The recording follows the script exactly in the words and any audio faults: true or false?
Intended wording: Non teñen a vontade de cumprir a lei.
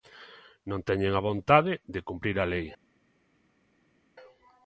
true